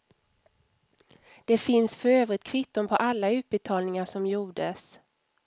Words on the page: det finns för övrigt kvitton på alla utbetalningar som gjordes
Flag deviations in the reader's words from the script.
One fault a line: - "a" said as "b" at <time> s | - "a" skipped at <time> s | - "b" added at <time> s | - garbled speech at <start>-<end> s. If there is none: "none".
none